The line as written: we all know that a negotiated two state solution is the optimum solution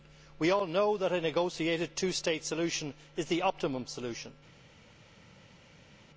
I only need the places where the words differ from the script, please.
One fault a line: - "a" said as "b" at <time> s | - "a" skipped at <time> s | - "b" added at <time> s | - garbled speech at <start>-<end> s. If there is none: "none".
none